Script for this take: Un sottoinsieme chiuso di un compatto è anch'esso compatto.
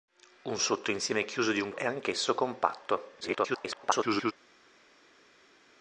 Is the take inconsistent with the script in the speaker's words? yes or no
yes